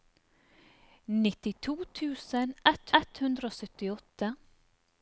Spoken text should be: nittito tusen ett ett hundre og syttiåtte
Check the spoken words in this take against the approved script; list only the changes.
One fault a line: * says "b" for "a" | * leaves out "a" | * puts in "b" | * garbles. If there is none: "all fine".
all fine